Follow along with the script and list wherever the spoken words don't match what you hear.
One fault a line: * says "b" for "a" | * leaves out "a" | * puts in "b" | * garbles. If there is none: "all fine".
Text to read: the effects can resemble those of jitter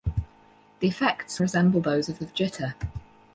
* leaves out "can"
* puts in "of"